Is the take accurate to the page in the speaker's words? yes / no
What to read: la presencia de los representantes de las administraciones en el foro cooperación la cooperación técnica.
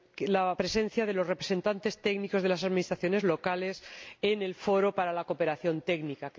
no